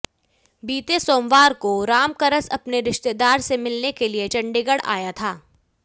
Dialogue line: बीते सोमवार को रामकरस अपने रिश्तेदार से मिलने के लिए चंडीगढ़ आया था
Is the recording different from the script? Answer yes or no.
no